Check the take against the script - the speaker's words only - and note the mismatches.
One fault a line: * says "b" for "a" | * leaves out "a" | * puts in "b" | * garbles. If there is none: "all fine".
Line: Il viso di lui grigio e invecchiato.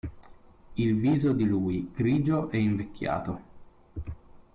all fine